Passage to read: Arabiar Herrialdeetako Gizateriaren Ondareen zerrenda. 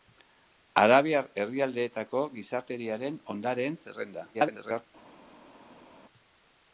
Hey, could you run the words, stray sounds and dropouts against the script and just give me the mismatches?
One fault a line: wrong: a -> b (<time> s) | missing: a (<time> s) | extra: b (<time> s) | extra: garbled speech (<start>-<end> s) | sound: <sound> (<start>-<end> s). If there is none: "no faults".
extra: garbled speech (4.3-4.9 s)